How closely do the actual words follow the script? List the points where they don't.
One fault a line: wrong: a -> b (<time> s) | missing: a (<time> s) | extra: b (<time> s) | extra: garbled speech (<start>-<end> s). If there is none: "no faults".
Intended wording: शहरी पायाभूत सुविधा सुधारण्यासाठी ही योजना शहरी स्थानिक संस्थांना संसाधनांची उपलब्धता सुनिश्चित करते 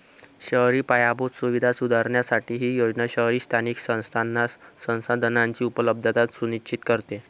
no faults